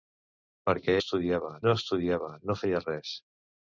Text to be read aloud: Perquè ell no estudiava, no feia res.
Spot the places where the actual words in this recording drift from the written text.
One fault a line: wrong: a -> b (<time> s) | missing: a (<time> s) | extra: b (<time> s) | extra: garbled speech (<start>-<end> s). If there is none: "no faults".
wrong: ell -> estudiava (1.0 s)